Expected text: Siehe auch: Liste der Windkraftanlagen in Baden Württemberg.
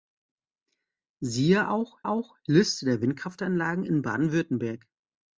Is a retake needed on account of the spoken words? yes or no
yes